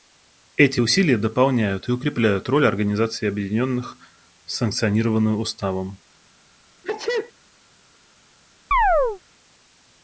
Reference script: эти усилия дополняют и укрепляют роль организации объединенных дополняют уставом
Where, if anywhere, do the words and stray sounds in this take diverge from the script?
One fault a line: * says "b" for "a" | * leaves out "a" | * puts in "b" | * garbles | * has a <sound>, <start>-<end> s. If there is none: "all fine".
* says "санкционированную" for "дополняют"
* has a sneeze, 6.8-7.3 s
* has a chirp, 8.7-9.2 s